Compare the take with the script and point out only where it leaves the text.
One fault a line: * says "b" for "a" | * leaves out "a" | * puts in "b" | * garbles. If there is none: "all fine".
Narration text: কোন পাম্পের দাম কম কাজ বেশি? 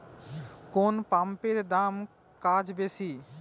* leaves out "কম"